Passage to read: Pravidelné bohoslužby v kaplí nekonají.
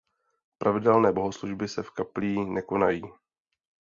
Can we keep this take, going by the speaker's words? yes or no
no